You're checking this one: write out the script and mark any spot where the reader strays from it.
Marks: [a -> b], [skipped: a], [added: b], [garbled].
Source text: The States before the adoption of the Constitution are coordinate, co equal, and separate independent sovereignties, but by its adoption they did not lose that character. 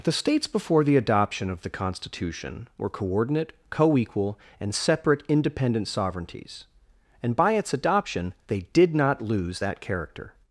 The States before the adoption of the Constitution [are -> were] coordinate, co equal, and separate independent sovereignties, [but -> and] by its adoption they did not lose that character.